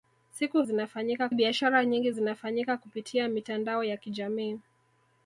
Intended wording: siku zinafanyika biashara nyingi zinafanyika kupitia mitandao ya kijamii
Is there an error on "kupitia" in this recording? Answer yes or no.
no